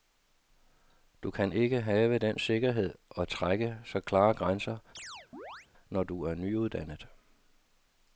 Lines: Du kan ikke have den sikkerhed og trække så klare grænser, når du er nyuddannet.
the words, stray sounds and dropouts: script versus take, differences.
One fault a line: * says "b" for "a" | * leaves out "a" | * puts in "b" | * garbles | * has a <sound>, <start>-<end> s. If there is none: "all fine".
* has a chirp, 4.9-5.7 s